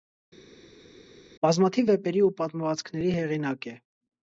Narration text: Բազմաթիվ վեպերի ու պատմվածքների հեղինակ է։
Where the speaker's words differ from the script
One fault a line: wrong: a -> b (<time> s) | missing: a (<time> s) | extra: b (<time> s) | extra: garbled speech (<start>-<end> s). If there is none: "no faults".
no faults